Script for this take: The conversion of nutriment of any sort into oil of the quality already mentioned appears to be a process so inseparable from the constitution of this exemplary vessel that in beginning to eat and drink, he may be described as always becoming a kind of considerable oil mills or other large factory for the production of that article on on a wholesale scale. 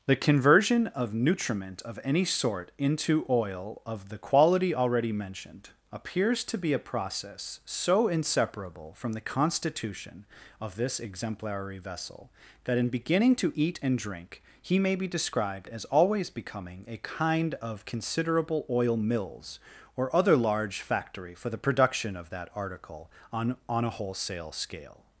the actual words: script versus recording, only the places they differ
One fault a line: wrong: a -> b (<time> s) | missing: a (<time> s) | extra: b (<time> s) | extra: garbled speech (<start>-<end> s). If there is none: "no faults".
no faults